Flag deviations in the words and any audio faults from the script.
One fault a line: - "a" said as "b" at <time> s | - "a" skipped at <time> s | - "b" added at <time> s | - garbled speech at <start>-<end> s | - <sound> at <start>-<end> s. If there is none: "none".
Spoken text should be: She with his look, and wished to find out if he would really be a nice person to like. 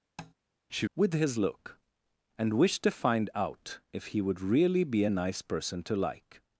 - tap at 0.2-0.3 s